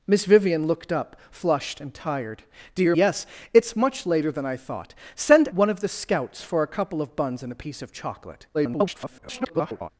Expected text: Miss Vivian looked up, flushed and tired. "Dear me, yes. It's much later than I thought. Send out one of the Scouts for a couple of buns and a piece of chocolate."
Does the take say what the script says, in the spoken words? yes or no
no